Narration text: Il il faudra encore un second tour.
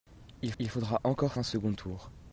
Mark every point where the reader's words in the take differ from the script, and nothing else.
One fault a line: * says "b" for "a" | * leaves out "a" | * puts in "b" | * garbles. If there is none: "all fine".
all fine